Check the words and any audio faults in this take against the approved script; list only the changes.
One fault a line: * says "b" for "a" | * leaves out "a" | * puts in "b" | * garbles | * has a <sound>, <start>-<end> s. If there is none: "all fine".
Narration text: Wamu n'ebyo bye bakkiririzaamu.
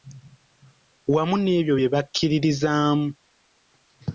all fine